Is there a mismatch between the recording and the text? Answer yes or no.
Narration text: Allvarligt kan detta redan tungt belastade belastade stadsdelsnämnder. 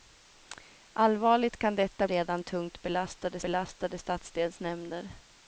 no